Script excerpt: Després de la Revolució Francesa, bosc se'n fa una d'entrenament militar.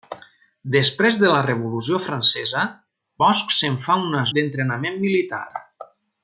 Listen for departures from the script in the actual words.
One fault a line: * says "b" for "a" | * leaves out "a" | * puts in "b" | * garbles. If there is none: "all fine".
all fine